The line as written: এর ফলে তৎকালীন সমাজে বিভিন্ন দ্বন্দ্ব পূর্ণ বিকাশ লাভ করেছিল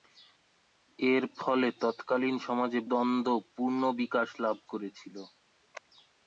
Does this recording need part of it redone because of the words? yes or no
yes